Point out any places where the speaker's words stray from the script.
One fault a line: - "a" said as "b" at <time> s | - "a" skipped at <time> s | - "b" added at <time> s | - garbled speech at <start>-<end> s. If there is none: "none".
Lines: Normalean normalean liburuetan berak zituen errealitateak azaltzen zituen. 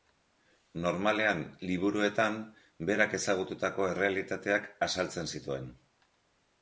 - "normalean" skipped at 1.4 s
- "zituen" said as "ezagututako" at 3.2 s